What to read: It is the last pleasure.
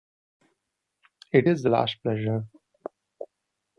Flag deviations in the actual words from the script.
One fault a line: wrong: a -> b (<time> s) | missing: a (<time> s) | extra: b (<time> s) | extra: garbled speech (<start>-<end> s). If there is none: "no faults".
no faults